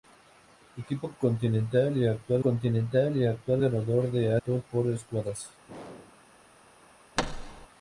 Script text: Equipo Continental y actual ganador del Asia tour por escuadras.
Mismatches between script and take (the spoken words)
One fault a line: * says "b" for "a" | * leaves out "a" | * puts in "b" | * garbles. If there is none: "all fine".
* puts in "Continental y actual"
* leaves out "Asia"